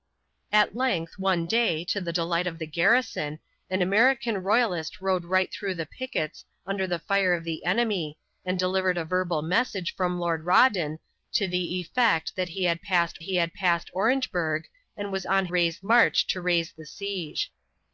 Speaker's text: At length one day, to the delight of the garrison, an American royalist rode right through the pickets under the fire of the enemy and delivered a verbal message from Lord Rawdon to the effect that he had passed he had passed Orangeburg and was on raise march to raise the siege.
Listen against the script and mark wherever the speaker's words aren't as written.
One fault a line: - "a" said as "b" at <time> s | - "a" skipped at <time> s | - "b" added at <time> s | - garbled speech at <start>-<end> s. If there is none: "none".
none